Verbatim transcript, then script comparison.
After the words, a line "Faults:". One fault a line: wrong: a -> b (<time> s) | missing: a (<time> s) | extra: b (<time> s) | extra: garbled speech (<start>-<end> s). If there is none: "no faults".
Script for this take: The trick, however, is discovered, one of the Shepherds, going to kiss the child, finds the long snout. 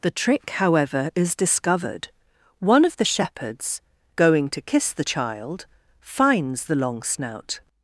The trick, however, is discovered, one of the Shepherds, going to kiss the child, finds the long snout.
Faults:
no faults